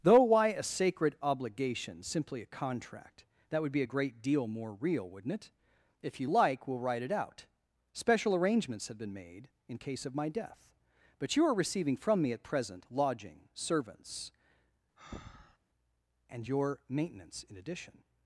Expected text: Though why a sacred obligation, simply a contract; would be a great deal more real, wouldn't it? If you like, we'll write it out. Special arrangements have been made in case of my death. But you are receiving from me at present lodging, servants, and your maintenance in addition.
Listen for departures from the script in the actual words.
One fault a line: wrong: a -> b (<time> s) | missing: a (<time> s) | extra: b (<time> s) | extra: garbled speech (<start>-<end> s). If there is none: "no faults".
extra: that (3.5 s)